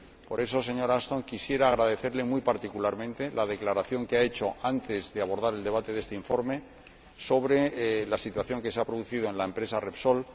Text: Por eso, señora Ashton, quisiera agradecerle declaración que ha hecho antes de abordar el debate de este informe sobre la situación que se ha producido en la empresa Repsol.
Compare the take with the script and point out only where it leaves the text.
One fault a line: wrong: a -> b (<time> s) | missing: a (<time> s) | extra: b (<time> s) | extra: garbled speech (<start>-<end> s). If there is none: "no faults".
extra: muy particularmente la (2.2 s)